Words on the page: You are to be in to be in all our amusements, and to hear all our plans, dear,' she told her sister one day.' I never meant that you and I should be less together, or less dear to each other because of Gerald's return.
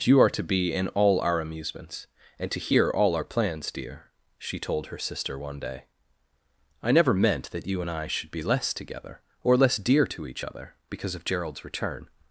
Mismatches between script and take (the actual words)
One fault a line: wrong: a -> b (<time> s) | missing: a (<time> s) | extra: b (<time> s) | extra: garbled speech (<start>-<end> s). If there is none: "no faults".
missing: to be in (0.9 s)